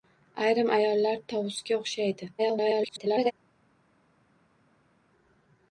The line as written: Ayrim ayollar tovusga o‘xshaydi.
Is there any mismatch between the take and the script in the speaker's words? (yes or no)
yes